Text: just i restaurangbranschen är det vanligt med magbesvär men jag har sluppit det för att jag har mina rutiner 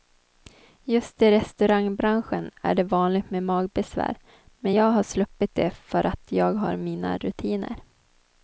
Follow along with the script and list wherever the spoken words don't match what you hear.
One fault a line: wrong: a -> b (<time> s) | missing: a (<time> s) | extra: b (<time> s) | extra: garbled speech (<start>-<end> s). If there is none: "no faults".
no faults